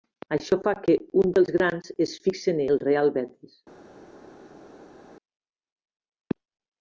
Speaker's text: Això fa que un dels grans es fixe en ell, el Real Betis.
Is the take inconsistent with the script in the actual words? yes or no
yes